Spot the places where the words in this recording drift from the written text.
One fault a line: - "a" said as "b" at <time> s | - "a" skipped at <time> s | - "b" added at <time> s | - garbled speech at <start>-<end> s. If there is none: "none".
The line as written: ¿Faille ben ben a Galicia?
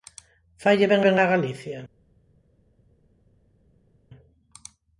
none